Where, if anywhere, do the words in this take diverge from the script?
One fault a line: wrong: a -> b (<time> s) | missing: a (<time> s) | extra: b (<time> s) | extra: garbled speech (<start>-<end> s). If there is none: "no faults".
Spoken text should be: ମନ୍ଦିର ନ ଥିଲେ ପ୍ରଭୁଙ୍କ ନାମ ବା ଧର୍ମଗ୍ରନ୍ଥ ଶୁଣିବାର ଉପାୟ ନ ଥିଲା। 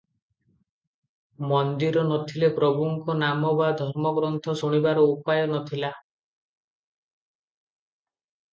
no faults